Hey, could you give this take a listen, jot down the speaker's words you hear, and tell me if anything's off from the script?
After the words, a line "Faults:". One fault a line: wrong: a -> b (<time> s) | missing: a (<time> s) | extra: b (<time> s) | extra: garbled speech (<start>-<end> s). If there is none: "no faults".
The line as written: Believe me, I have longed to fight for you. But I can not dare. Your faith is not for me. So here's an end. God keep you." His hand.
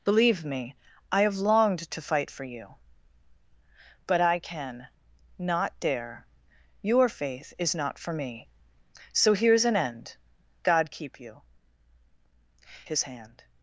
Believe me, I have longed to fight for you. But I can not dare. Your faith is not for me. So here's an end. God keep you." His hand.
Faults:
no faults